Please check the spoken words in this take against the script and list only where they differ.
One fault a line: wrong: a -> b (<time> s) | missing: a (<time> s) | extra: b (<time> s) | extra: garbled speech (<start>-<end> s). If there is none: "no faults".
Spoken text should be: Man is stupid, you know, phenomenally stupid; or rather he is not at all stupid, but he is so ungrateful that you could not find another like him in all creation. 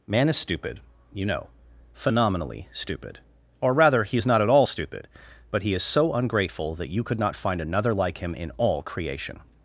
no faults